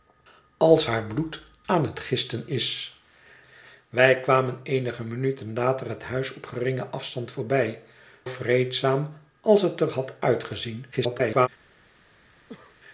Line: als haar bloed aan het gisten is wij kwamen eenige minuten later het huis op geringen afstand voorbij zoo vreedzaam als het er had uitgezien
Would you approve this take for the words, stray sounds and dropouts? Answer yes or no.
no